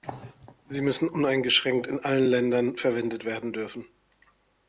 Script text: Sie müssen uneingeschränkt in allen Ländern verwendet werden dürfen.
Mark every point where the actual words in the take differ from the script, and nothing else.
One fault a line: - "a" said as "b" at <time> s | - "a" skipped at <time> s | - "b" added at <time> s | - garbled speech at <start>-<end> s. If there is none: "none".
none